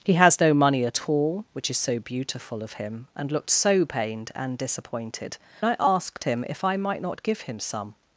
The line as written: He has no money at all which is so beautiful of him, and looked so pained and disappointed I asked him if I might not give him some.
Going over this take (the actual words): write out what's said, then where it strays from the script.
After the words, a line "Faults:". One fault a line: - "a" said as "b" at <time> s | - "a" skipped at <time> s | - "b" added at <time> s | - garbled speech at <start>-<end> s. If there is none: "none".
He has no money at all which is so beautiful of him, and looked so pained and disappointed I asked him if I might not give him some.
Faults:
none